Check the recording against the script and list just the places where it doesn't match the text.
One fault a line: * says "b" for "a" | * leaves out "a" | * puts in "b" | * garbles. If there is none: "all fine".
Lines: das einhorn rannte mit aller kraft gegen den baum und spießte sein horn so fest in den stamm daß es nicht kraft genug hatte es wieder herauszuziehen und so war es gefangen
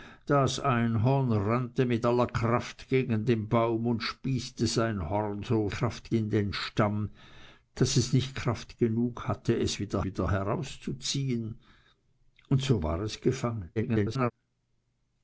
* says "kraft" for "fest"
* puts in "wieder"
* garbles